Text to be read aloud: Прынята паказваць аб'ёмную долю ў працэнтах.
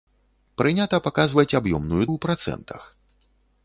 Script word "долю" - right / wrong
wrong